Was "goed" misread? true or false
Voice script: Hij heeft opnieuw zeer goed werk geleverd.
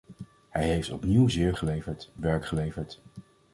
true